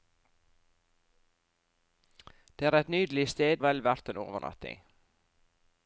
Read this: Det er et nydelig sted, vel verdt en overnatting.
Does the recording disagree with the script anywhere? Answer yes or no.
no